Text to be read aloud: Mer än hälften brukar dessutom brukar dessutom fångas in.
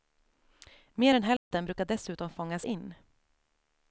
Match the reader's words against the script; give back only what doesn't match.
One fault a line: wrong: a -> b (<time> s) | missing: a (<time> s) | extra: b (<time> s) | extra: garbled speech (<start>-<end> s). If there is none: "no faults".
missing: brukar dessutom (2.3 s)